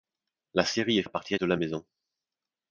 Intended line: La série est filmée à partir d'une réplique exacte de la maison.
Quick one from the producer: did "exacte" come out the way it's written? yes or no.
no